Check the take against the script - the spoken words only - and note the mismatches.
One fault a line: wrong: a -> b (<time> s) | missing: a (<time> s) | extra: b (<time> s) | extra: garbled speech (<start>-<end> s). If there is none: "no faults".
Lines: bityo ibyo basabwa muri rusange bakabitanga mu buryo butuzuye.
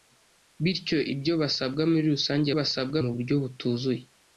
wrong: bakabitanga -> basabwa (2.6 s)